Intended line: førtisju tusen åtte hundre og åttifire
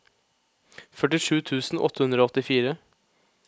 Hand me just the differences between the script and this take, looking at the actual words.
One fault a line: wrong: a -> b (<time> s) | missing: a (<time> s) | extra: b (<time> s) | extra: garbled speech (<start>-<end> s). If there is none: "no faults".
no faults